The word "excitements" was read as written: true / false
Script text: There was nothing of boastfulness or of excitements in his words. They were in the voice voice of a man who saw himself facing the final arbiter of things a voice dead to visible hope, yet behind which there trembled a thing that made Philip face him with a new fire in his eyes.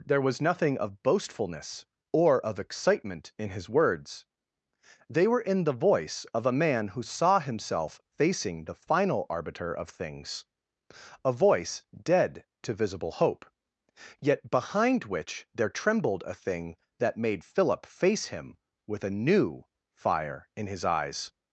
false